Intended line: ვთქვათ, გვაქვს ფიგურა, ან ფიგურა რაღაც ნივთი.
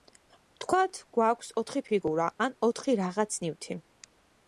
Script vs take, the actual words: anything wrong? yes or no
yes